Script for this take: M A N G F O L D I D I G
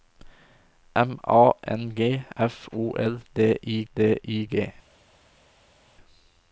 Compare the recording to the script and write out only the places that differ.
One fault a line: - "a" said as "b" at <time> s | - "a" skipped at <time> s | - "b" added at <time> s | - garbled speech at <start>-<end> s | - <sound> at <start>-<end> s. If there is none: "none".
none